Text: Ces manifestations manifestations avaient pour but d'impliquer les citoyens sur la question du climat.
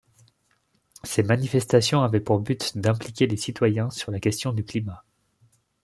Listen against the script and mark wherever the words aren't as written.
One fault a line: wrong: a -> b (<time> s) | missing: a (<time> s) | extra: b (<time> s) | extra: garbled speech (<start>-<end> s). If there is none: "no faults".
missing: manifestations (2.0 s)